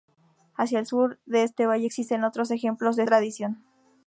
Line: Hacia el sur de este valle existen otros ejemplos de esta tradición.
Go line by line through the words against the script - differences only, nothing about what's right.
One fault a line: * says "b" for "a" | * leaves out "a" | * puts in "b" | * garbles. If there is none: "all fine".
* leaves out "esta"